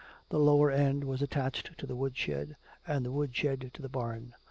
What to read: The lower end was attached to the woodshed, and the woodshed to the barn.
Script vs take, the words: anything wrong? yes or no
no